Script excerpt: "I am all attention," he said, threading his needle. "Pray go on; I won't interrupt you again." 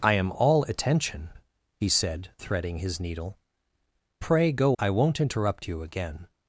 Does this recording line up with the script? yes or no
no